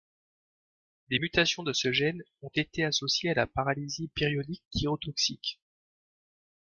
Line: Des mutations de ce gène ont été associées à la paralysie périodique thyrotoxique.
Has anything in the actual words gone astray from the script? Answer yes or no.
no